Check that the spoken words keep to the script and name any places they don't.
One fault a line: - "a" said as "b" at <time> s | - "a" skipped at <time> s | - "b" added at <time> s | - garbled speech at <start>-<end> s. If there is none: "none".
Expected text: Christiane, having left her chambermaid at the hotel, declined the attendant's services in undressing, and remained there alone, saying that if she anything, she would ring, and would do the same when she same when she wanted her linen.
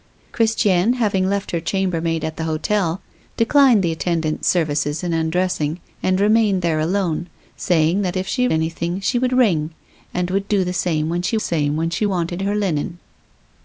none